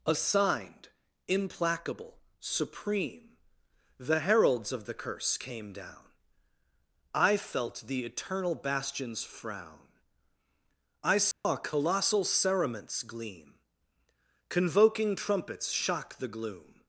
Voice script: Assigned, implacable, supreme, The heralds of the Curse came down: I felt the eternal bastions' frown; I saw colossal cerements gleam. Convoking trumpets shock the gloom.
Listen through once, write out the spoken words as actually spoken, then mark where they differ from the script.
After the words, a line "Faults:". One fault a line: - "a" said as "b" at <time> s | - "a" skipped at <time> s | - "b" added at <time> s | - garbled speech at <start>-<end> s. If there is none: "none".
Assigned, implacable, supreme, The heralds of the Curse came down: I felt the eternal bastions' frown; I saw colossal cerements gleam. Convoking trumpets shock the gloom.
Faults:
none